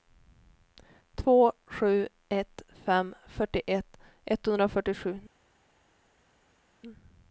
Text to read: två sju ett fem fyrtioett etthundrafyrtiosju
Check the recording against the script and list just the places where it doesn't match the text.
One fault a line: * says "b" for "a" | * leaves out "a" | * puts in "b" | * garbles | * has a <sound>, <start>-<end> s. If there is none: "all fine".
all fine